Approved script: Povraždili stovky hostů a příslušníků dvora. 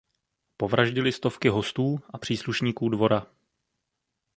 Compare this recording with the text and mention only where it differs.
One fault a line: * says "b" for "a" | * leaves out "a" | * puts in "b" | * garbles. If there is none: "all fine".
all fine